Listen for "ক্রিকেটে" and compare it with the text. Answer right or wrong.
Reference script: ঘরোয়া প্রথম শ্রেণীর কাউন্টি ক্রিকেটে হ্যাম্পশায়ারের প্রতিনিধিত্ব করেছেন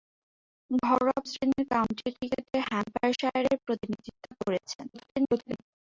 right